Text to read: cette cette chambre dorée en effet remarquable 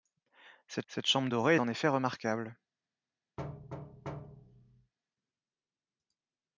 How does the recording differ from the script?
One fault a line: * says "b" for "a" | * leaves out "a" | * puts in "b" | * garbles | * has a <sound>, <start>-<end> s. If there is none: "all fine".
* has a thud, 3.4-4.9 s